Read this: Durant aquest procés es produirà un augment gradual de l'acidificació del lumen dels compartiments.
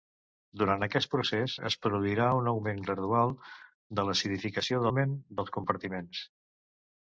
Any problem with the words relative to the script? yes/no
yes